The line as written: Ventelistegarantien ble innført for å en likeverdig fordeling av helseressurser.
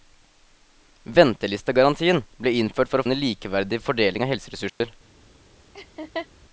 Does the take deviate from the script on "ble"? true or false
false